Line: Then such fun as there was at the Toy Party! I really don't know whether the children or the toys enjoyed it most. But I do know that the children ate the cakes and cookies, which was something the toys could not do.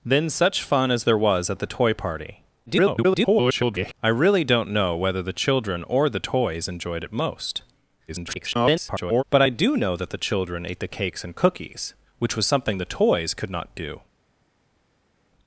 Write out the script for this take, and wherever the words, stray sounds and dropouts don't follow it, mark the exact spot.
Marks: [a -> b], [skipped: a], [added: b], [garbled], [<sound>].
Then such fun as there was at the Toy Party! [garbled] I really don't know whether the children or the toys enjoyed it most. [garbled] But I do know that the children ate the cakes and cookies, which was something the toys could not do.